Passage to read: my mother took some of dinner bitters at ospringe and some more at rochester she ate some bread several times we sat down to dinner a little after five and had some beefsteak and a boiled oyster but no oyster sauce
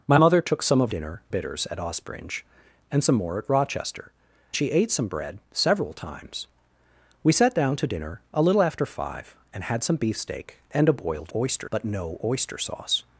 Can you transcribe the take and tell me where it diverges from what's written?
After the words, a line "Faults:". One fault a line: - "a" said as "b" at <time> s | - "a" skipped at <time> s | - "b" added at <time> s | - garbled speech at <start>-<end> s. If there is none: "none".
my mother took some of dinner bitters at ospringe and some more at rochester she ate some bread several times we sat down to dinner a little after five and had some beefsteak and a boiled oyster but no oyster sauce
Faults:
none